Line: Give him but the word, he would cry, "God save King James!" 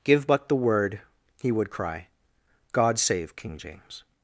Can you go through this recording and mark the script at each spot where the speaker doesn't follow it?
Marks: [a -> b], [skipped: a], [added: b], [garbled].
Give [skipped: him] but the word, he would cry, "God save King James!"